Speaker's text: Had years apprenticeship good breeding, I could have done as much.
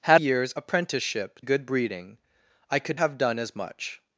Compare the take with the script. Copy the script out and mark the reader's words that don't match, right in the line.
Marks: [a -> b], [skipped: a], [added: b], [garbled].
Had years apprenticeship good breeding, I could have done as much.